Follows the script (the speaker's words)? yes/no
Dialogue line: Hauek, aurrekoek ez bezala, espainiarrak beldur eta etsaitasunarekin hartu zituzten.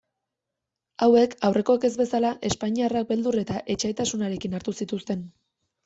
yes